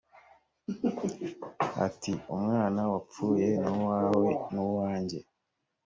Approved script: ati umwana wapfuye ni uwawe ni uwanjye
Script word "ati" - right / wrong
right